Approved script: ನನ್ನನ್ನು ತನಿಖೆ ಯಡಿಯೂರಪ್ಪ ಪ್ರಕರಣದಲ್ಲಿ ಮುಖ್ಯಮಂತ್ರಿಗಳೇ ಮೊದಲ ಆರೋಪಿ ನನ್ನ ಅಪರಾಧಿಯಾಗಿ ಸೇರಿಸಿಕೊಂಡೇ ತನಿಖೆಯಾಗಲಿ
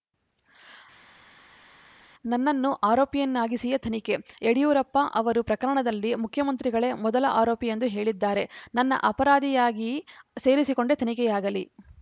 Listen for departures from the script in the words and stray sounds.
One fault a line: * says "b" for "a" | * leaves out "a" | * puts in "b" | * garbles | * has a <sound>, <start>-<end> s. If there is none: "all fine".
* puts in "ಆರೋಪಿಯನ್ನಾಗಿಸಿಯೇ"
* puts in "ಅವರು"
* puts in "ಎಂದು ಹೇಳಿದ್ದಾರೆ"